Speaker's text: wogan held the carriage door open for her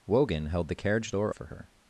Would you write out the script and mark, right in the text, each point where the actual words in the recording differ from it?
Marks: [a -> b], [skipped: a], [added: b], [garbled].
wogan held the carriage door [skipped: open] for her